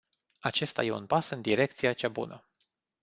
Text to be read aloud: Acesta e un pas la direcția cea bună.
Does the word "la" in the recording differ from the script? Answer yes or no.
yes